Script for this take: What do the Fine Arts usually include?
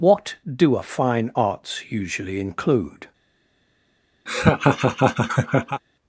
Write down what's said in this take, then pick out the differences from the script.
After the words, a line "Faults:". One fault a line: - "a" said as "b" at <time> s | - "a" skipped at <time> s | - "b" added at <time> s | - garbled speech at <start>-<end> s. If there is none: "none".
What do a Fine Arts usually include?
Faults:
- "the" said as "a" at 0.8 s